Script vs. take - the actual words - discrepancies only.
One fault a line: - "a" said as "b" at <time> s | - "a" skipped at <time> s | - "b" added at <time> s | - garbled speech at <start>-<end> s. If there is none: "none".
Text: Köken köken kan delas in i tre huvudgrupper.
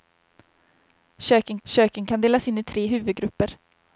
none